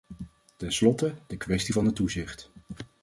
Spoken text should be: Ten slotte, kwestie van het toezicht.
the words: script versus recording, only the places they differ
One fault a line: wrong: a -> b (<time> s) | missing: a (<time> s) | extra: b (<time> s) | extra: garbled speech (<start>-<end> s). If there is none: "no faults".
extra: de (1.3 s)